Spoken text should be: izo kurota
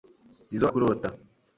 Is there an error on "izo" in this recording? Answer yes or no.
no